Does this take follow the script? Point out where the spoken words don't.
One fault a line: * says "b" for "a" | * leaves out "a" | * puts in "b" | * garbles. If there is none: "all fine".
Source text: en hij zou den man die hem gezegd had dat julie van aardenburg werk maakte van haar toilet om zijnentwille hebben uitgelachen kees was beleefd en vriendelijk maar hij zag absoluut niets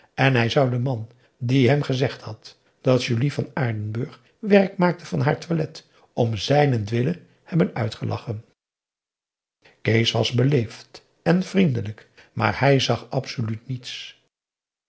all fine